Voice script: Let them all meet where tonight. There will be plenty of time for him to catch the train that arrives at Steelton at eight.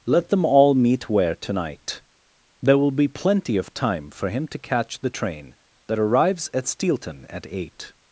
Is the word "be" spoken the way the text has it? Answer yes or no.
yes